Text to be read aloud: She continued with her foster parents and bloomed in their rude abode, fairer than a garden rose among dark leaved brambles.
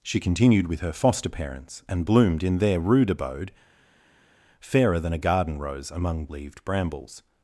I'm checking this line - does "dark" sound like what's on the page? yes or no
no